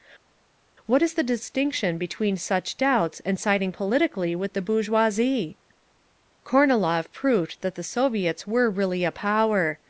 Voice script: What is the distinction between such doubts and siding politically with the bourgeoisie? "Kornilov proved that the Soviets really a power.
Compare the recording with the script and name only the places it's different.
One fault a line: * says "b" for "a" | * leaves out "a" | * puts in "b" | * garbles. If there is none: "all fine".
* puts in "were"